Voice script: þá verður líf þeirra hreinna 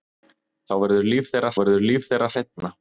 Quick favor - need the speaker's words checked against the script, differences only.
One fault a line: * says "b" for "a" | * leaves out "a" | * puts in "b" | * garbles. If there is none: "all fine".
* puts in "verður líf þeirra"